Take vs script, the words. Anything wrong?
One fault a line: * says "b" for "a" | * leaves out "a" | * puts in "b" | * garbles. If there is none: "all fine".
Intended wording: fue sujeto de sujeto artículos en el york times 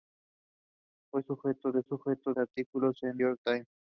all fine